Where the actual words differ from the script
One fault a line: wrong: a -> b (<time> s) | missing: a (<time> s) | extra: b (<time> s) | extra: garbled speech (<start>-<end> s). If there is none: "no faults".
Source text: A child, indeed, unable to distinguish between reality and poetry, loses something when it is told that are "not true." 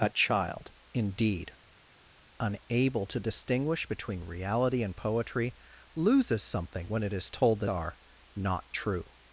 no faults